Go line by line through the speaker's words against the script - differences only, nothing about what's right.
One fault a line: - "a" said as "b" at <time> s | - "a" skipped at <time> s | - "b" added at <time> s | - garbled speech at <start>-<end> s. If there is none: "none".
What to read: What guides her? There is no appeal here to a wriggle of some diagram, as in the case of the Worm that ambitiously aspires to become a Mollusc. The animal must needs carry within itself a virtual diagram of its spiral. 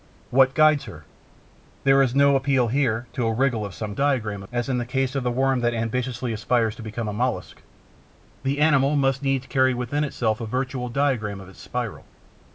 none